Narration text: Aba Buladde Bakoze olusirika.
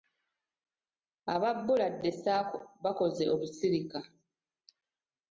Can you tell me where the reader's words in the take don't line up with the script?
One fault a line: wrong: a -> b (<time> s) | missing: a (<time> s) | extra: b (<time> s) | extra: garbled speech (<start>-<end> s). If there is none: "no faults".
extra: Sacco (2.2 s)